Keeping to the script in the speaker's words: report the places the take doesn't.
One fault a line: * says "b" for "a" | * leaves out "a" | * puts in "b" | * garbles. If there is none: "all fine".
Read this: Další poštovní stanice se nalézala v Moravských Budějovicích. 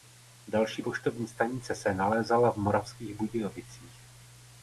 all fine